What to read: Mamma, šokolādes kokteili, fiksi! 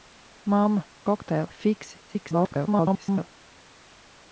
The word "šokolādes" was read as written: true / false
false